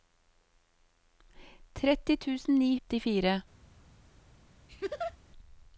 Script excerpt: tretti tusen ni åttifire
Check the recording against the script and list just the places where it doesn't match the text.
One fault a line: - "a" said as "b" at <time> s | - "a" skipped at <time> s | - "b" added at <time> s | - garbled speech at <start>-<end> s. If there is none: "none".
none